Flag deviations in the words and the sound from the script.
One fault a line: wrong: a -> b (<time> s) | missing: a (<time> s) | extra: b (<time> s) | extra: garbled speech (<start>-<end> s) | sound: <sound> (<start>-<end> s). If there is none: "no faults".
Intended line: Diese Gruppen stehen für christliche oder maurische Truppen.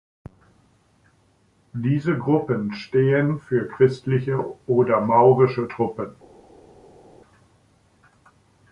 no faults